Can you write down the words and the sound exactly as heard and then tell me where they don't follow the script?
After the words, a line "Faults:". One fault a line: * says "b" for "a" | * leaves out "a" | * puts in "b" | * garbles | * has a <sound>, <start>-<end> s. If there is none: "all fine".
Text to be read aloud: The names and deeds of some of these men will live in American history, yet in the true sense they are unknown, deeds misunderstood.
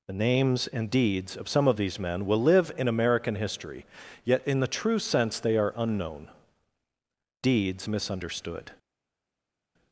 The names and deeds of some of these men will live in American history, yet in the true sense they are unknown, deeds misunderstood.
Faults:
all fine